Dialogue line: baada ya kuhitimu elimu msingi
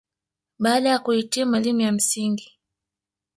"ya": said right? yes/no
yes